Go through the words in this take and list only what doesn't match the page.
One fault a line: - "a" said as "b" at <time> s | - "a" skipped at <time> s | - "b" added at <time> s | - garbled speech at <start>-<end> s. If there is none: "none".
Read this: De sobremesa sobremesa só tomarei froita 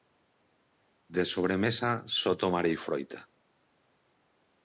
- "sobremesa" skipped at 1.9 s